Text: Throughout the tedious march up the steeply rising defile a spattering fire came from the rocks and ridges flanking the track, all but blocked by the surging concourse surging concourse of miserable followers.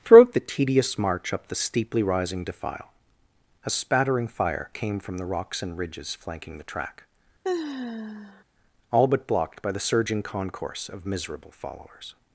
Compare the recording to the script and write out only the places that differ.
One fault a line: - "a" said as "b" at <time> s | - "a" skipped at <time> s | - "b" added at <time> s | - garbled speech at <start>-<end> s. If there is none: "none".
- "surging concourse" skipped at 10.9 s